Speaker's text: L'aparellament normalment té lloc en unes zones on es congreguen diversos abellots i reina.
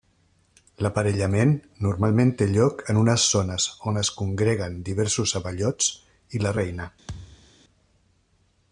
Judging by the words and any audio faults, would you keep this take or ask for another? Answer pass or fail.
fail